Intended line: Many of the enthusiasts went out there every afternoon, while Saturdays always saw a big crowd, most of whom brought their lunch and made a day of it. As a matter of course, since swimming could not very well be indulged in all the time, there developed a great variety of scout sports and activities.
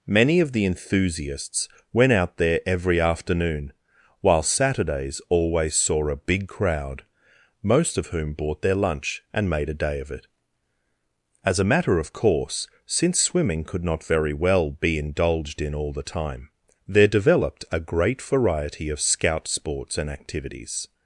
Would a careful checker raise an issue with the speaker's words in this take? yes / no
yes